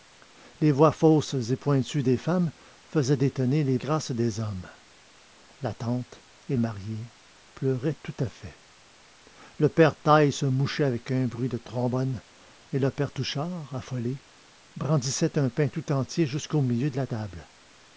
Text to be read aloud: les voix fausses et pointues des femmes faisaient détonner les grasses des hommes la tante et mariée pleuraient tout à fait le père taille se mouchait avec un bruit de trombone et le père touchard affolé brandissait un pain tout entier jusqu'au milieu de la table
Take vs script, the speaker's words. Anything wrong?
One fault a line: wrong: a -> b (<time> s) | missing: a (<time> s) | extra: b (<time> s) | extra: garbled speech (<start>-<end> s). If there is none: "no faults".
no faults